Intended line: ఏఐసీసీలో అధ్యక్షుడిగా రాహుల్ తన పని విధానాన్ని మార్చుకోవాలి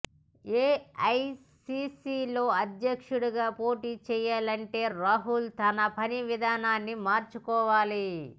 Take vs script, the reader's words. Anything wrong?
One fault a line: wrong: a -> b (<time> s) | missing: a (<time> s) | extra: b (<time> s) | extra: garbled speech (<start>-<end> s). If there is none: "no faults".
extra: పోటీ చేయాలంటే (3.6 s)